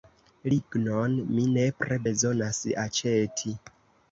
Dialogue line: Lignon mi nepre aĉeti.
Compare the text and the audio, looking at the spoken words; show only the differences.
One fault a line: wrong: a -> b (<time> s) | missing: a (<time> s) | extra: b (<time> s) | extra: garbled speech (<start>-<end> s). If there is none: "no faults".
extra: bezonas (2.1 s)